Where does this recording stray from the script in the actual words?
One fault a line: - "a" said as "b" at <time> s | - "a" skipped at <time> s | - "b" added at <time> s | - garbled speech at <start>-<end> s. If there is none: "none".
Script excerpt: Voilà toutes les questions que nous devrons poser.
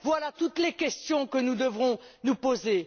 - "nous" added at 2.2 s